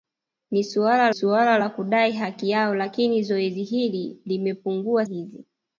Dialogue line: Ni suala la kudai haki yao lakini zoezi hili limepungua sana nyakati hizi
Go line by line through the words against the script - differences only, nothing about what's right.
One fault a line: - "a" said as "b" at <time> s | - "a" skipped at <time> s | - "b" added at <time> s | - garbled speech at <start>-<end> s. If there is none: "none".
- "suala" added at 1.1 s
- "sana nyakati" skipped at 5.1 s